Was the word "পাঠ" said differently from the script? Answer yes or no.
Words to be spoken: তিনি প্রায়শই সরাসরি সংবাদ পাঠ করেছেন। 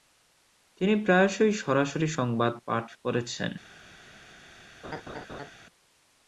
no